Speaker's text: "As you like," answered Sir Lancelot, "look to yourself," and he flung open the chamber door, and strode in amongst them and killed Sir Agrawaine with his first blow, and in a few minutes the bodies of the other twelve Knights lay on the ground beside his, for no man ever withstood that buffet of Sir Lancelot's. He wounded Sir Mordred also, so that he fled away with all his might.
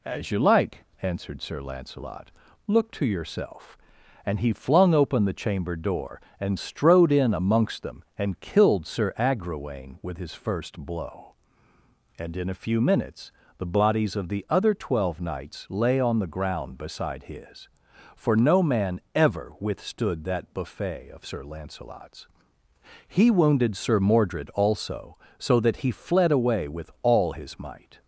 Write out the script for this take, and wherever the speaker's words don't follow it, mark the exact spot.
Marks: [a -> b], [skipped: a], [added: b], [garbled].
"As you like," answered Sir Lancelot, "look to yourself," and he flung open the chamber door, and strode in amongst them and killed Sir Agrawaine with his first blow, and in a few minutes the bodies of the other twelve Knights lay on the ground beside his, for no man ever withstood that buffet of Sir Lancelot's. He wounded Sir Mordred also, so that he fled away with all his might.